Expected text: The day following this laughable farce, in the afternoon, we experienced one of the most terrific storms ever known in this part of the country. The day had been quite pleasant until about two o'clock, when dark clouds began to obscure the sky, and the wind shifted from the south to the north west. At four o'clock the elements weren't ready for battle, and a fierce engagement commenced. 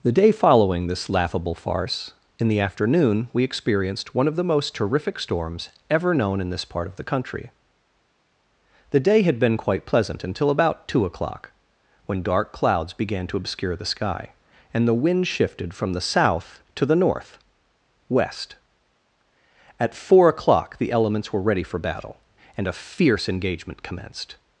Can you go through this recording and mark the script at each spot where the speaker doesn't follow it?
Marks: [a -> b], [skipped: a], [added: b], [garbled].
The day following this laughable farce, in the afternoon, we experienced one of the most terrific storms ever known in this part of the country. The day had been quite pleasant until about two o'clock, when dark clouds began to obscure the sky, and the wind shifted from the south to the north west. At four o'clock the elements [weren't -> were] ready for battle, and a fierce engagement commenced.